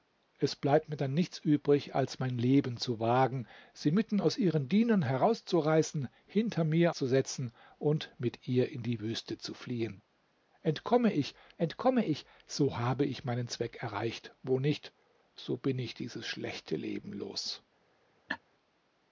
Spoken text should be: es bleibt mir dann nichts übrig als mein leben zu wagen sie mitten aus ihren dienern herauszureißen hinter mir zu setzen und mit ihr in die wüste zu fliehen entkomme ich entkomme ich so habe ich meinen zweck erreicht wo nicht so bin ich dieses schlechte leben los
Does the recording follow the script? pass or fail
pass